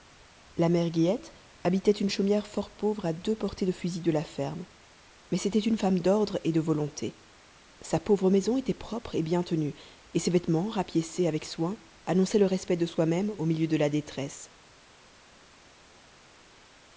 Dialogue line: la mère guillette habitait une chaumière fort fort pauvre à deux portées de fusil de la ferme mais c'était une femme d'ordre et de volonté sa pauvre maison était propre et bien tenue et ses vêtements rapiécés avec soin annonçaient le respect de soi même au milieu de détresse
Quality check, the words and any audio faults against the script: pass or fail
fail